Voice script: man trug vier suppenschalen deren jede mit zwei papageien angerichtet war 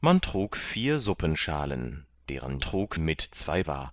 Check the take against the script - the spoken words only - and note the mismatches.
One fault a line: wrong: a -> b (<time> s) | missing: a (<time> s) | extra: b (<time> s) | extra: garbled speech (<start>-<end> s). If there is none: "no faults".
wrong: jede -> trug (2.6 s)
missing: papageien angerichtet (3.6 s)